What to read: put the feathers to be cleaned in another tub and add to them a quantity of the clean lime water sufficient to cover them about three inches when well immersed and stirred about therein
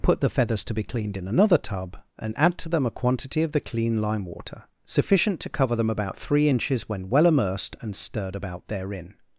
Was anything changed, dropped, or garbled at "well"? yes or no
no